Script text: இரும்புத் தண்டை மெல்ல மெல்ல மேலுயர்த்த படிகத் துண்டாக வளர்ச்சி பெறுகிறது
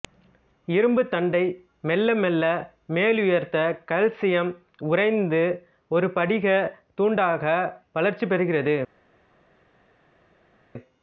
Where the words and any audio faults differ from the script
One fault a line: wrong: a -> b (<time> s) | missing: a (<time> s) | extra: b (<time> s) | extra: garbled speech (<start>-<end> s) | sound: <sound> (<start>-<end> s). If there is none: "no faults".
extra: கல்சியம் உறைந்து ஒரு (3.9 s)